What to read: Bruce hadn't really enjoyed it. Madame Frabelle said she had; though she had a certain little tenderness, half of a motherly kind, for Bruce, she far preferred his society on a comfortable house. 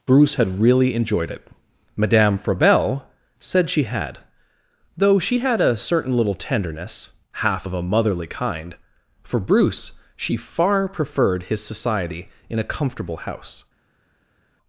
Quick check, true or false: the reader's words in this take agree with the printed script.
false